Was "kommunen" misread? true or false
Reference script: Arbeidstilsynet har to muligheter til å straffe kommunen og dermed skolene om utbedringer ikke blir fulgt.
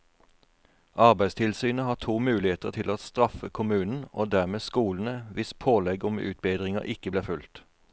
false